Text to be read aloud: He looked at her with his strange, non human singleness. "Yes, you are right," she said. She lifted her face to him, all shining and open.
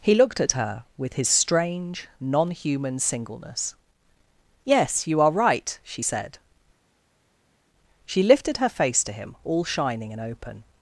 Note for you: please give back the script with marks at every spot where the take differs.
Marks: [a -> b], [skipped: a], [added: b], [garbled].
He looked at her with his strange, non human singleness. "Yes, you are right," she said. She lifted her face to him, all shining and open.